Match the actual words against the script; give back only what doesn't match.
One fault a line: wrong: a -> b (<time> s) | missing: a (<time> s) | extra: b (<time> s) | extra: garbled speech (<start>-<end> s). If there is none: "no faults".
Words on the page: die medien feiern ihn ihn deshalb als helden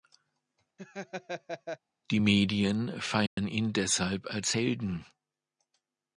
missing: ihn (3.7 s)